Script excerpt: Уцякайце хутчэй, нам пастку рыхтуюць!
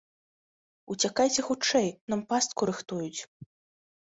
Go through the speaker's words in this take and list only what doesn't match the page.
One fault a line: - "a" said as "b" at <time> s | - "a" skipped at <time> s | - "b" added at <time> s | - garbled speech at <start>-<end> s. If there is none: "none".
none